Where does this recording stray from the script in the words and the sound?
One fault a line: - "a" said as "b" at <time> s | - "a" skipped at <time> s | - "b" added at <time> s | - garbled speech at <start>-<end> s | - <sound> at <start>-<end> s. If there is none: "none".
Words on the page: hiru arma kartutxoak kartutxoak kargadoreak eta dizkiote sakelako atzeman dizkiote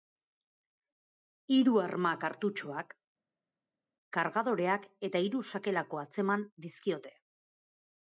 - "kartutxoak" skipped at 3.0 s
- "dizkiote" said as "hiru" at 5.3 s